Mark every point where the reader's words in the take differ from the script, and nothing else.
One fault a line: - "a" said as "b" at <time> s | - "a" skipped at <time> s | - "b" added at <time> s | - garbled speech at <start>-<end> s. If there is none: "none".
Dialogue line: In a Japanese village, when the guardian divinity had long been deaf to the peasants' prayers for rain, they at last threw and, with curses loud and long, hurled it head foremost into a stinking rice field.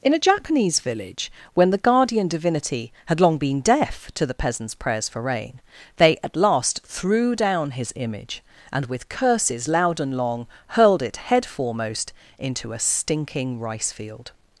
- "down his image" added at 7.3 s